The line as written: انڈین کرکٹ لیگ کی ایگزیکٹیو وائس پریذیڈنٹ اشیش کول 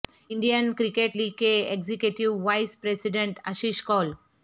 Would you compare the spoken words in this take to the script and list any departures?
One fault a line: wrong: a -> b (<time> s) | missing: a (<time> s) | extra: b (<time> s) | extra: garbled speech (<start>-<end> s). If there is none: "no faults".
wrong: کی -> کے (1.4 s)